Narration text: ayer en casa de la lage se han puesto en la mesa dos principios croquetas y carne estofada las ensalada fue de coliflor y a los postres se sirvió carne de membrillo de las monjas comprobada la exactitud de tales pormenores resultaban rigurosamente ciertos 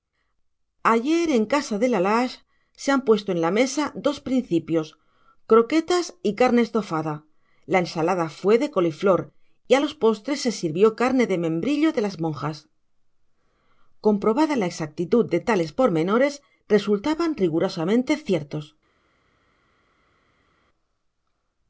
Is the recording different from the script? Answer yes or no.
yes